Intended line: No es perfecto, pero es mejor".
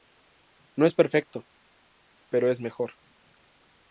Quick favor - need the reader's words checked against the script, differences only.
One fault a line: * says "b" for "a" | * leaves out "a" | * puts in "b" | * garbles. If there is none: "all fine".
all fine